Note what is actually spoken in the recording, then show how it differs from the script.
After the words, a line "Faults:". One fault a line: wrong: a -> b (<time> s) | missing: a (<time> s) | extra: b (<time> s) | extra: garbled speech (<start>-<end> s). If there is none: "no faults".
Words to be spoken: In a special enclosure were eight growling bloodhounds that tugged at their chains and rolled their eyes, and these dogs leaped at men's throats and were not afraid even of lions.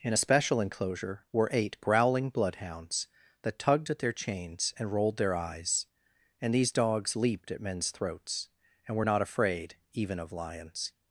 In a special enclosure were eight growling bloodhounds that tugged at their chains and rolled their eyes, and these dogs leaped at men's throats and were not afraid even of lions.
Faults:
no faults